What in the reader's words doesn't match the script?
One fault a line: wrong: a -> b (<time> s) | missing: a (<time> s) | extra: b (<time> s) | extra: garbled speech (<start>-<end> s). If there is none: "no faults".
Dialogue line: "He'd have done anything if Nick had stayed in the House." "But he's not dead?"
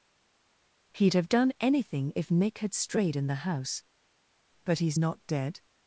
wrong: stayed -> strayed (2.7 s)